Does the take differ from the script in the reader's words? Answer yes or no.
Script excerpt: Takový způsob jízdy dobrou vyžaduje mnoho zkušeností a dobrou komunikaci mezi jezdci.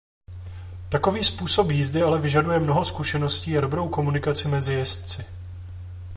yes